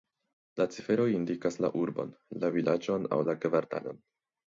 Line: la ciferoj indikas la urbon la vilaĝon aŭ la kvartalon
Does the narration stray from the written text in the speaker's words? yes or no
no